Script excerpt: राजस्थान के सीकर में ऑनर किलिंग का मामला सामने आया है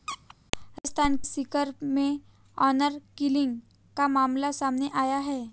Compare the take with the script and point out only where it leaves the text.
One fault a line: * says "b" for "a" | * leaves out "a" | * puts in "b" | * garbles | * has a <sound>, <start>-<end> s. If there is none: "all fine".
* has a squeak, 0.1-0.3 s
* leaves out "के"